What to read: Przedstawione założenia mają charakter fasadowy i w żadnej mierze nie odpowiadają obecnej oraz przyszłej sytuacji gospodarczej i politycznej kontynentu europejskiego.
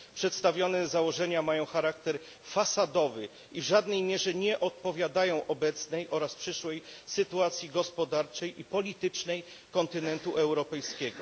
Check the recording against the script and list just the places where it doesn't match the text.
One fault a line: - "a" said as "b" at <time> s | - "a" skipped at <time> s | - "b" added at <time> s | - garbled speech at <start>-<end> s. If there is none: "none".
none